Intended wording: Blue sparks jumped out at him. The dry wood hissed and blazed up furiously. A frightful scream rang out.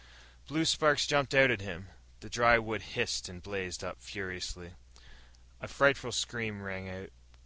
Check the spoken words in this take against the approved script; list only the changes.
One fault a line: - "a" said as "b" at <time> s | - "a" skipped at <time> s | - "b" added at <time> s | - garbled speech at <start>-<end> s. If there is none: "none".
none